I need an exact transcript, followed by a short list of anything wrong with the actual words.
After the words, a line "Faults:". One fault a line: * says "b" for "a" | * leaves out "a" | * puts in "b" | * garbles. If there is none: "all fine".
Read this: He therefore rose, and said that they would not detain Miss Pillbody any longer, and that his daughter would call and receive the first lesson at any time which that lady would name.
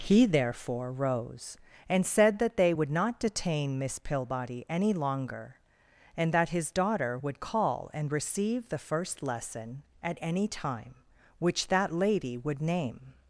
He therefore rose, and said that they would not detain Miss Pillbody any longer, and that his daughter would call and receive the first lesson at any time which that lady would name.
Faults:
all fine